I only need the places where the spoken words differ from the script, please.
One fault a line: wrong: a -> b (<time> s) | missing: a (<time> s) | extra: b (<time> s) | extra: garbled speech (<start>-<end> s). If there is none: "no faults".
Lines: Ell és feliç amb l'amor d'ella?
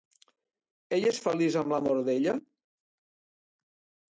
no faults